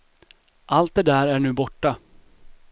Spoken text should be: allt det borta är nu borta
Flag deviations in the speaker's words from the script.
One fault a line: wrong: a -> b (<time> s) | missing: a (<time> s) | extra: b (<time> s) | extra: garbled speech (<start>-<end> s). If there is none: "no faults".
wrong: borta -> där (1.0 s)